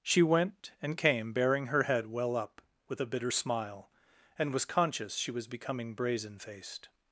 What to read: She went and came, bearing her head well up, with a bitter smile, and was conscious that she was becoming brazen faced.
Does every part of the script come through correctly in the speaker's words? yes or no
no